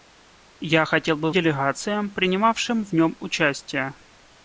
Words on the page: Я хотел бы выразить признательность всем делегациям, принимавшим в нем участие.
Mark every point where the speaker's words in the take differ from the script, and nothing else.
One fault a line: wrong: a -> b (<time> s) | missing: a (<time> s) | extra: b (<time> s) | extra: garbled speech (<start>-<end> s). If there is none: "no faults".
missing: выразить признательность всем (1.3 s)